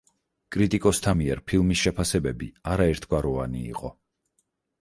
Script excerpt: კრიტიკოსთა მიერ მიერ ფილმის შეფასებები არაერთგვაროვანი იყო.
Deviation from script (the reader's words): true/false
true